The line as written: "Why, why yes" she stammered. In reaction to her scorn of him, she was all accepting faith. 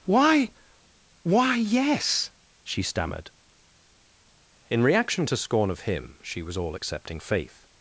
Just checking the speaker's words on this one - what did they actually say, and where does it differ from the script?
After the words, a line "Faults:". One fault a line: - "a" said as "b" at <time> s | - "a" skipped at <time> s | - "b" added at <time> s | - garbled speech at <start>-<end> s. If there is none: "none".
"Why, why yes" she stammered. In reaction to scorn of him, she was all accepting faith.
Faults:
- "her" skipped at 5.4 s